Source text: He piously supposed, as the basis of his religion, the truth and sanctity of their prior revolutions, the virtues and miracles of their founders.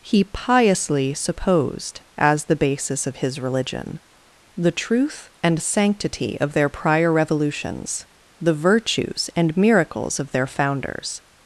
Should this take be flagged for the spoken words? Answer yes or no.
no